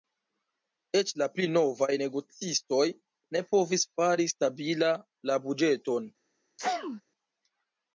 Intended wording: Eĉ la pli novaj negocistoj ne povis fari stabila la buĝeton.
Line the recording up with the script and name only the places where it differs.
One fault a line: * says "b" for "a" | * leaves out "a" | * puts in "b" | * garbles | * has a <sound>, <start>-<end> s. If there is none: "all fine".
* has a sneeze, 6.6-7.0 s